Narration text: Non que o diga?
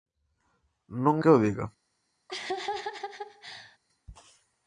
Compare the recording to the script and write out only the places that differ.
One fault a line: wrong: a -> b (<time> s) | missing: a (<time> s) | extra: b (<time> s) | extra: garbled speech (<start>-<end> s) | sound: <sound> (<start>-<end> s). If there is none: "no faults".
sound: laugh (2.3-3.8 s)